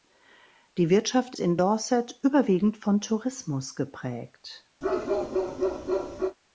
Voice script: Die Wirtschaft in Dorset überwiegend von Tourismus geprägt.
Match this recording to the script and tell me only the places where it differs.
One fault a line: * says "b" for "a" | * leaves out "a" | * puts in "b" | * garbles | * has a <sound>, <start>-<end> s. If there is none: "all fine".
* has a bark, 4.8-6.4 s